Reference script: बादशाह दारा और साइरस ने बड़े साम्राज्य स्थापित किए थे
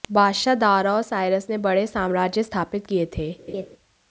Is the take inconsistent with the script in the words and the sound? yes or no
yes